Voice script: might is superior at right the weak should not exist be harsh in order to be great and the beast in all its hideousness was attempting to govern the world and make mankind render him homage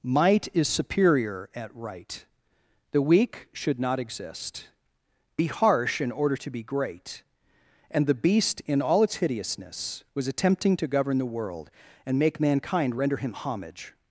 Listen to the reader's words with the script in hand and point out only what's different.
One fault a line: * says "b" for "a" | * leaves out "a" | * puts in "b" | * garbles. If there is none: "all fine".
all fine